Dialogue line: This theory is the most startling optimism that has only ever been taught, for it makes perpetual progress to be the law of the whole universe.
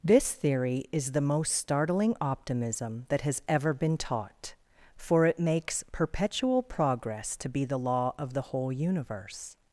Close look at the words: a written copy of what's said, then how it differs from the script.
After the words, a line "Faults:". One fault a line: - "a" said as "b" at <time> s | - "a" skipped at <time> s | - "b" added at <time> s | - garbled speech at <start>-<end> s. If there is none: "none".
This theory is the most startling optimism that has ever been taught, for it makes perpetual progress to be the law of the whole universe.
Faults:
- "only" skipped at 3.4 s